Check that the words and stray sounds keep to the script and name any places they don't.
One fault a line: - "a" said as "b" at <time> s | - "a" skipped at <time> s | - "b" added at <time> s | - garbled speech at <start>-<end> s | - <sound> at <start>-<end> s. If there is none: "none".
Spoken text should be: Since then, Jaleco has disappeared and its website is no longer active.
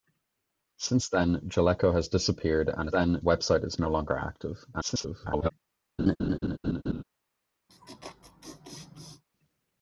- "its" said as "then" at 2.9 s
- garbled speech at 4.7-5.5 s
- laugh at 6.0-7.0 s
- laugh at 7.7-9.2 s